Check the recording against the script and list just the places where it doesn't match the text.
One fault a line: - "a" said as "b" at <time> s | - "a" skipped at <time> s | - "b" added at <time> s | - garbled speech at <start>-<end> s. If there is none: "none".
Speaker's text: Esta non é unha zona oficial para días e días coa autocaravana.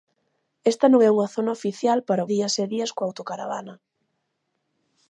none